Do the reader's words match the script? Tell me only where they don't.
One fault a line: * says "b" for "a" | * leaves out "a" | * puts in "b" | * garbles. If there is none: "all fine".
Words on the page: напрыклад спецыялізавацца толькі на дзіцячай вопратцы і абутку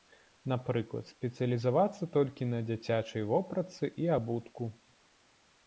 all fine